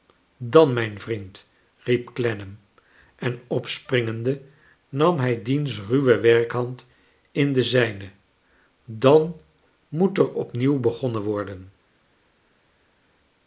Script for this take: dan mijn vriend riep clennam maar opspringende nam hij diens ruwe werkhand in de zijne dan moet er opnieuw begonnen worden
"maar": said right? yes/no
no